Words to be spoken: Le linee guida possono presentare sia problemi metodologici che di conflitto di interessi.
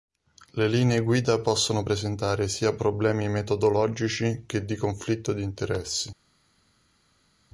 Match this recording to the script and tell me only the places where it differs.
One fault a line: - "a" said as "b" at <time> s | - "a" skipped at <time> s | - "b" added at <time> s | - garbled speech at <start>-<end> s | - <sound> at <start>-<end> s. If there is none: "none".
none